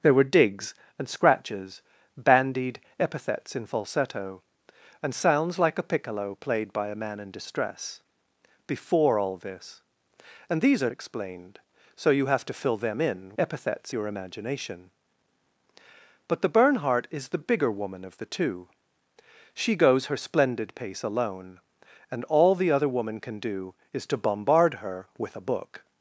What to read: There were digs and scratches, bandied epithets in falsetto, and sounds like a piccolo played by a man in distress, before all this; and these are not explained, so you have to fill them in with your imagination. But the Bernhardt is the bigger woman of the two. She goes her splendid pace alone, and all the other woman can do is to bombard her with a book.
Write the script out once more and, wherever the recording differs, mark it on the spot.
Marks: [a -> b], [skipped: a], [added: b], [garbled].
There were digs and scratches, bandied epithets in falsetto, and sounds like a piccolo played by a man in distress, before all this; and these are [skipped: not] explained, so you have to fill them in [with -> epithets] your imagination. But the Bernhardt is the bigger woman of the two. She goes her splendid pace alone, and all the other woman can do is to bombard her with a book.